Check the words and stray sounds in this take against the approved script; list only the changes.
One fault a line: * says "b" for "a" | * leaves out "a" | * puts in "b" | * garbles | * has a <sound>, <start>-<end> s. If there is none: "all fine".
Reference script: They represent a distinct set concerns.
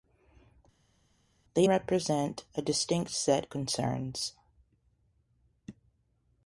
all fine